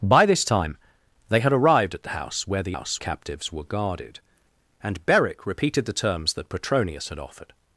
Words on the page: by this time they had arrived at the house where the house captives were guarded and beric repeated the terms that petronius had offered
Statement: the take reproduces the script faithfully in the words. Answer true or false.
true